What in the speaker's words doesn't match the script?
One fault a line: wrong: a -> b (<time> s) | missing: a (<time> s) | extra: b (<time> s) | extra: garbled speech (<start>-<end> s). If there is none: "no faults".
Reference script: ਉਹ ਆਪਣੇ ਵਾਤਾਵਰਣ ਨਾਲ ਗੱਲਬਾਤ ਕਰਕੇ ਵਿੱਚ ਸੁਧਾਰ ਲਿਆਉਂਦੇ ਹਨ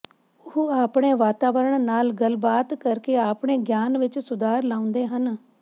extra: ਆਪਣੇ ਗਿਆਨ (3.2 s)